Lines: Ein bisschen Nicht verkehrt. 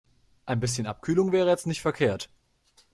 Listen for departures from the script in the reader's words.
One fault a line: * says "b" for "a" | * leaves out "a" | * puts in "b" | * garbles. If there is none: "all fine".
* puts in "Abkühlung wäre jetzt"